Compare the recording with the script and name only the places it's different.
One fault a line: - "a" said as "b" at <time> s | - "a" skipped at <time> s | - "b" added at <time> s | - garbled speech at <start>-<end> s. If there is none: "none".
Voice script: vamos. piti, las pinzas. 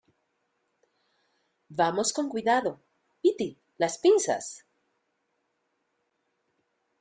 - "con cuidado" added at 2.1 s